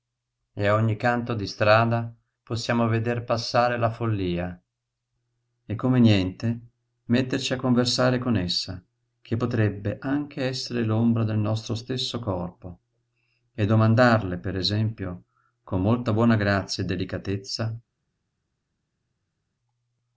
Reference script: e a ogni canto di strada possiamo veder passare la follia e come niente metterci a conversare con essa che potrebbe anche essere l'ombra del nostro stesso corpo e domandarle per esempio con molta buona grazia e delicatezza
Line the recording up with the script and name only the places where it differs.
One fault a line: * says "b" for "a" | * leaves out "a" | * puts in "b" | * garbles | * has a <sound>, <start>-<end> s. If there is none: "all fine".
all fine